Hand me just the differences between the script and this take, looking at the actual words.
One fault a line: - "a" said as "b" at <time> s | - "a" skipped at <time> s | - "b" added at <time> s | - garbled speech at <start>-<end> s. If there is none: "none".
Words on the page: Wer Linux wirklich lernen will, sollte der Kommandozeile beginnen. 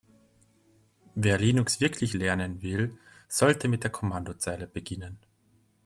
- "mit" added at 3.7 s